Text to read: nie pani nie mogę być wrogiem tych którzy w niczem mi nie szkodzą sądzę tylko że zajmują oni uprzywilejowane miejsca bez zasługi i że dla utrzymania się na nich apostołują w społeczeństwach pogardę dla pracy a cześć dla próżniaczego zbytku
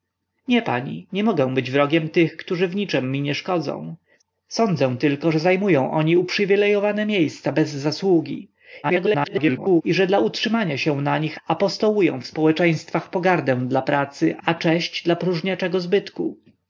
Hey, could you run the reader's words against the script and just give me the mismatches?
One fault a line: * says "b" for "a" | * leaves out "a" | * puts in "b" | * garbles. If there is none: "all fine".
* garbles